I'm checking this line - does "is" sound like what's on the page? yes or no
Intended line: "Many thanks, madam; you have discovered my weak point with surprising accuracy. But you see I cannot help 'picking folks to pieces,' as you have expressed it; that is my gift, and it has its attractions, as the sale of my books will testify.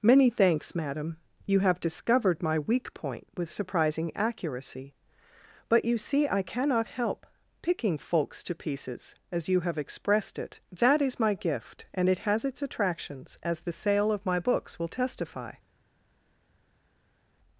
yes